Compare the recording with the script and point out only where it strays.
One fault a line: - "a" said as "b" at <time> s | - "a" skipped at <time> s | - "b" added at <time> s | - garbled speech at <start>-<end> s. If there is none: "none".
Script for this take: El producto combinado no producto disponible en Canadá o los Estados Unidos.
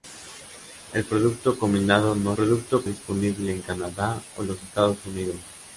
none